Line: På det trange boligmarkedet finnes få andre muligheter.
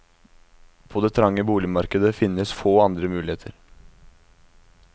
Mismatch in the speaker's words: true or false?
false